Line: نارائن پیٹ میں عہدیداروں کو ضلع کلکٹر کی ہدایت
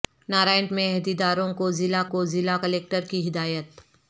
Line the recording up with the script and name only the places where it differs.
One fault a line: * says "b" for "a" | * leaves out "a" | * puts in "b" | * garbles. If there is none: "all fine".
* leaves out "پیٹ"
* puts in "کو ضلع"